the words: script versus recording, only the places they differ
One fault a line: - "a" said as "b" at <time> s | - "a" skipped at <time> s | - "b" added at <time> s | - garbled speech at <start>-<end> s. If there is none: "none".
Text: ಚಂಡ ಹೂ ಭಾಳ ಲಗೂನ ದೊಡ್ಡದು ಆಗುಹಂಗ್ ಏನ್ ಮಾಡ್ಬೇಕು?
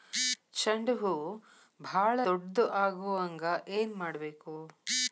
- "ಲಗೂನ" skipped at 2.2 s